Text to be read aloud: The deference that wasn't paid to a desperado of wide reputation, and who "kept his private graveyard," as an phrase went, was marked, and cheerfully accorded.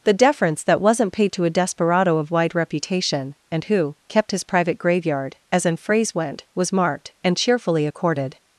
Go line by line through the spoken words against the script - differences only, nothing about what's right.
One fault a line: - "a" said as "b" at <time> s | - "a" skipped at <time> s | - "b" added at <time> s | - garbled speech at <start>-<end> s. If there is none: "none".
none